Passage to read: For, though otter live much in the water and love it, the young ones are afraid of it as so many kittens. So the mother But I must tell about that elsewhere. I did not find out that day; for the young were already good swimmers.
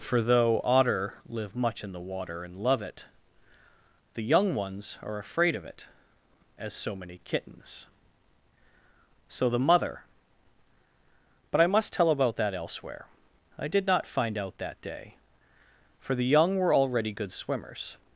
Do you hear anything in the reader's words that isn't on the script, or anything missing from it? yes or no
no